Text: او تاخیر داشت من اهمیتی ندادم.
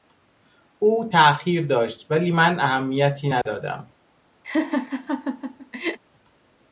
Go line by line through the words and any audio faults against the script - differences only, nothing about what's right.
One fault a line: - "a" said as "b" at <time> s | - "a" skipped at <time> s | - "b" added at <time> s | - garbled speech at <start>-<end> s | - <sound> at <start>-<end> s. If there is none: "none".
- "ولی" added at 2.1 s
- dropout at 3.4-3.5 s
- laugh at 4.4-6.0 s